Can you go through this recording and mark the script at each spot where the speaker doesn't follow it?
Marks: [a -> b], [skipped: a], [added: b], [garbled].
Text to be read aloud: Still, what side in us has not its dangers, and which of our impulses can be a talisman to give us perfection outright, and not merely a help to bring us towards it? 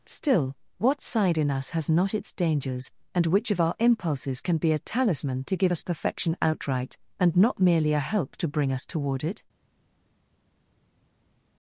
Still, what side in us has not its dangers, and which of our impulses can be a talisman to give us perfection outright, and not merely a help to bring us [towards -> toward] it?